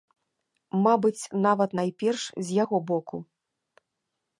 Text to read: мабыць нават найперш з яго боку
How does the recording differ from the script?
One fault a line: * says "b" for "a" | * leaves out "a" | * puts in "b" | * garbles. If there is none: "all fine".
all fine